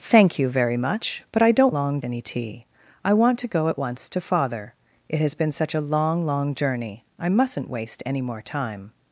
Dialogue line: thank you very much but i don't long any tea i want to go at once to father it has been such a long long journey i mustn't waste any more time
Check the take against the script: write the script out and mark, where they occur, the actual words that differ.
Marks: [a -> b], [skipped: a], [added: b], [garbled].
thank you very much but i don't long any tea i want to go at once to father it has been such a long long journey i mustn't waste any more time